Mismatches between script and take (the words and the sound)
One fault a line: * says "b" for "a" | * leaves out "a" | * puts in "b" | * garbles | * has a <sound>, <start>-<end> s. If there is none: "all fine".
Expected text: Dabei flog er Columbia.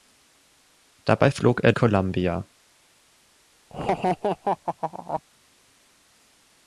* has a laugh, 3.7-5.2 s